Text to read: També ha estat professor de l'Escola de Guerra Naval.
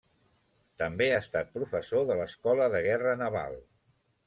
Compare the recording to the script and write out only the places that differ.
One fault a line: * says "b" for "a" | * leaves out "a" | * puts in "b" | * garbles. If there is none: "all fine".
all fine